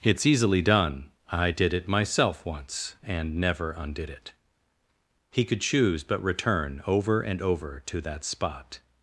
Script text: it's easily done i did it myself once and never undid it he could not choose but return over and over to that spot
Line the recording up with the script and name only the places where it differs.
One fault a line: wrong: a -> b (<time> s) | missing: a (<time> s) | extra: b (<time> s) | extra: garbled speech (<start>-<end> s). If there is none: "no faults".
missing: not (5.6 s)